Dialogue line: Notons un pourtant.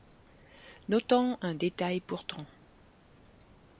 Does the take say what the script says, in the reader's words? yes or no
no